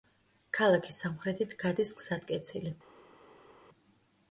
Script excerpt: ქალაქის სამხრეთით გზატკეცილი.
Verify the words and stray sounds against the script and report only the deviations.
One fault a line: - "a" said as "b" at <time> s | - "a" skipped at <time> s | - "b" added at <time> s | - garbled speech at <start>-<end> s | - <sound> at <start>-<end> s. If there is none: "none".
- "გადის" added at 1.6 s